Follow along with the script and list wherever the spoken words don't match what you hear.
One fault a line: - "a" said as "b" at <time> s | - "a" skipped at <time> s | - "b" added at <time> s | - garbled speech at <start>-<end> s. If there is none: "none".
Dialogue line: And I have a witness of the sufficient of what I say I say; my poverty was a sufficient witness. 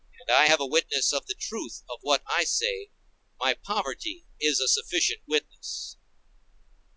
- "sufficient" said as "truth" at 1.3 s
- "I say" skipped at 2.9 s
- "was" said as "is" at 4.4 s